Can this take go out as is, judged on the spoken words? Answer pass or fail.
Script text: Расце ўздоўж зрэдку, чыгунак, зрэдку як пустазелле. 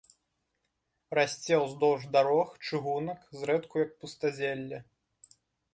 fail